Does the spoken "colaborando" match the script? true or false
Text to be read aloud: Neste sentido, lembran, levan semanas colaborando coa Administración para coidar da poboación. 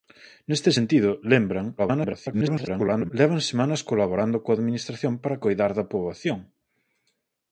true